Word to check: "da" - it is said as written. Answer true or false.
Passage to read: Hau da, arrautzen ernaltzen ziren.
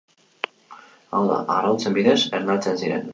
true